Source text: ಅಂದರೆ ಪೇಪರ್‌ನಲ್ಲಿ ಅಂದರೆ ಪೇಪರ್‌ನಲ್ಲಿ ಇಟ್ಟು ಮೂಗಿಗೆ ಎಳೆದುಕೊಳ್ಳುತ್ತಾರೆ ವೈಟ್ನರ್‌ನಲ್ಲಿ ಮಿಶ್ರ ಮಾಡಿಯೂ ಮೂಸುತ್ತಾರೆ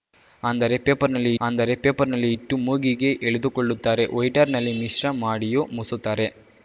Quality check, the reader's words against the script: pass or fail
pass